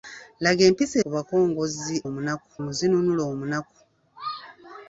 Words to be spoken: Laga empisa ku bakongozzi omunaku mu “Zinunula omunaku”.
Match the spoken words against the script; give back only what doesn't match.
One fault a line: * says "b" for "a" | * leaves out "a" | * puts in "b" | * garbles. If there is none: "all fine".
all fine